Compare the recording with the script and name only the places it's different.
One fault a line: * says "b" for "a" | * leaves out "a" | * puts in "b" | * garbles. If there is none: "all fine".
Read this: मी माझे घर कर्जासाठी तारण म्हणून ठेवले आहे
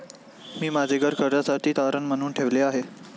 all fine